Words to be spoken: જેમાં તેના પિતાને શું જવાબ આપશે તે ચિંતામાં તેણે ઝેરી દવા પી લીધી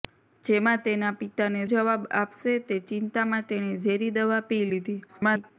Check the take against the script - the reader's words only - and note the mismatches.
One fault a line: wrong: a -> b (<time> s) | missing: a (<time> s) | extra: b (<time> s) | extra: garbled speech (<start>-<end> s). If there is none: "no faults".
missing: શું (1.6 s)
extra: garbled speech (5.1-5.5 s)